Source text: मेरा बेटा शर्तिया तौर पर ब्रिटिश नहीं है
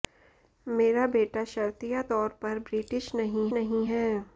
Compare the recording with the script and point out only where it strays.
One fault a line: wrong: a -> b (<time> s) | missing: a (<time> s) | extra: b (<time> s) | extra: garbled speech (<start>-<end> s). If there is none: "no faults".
extra: नहीं (3.5 s)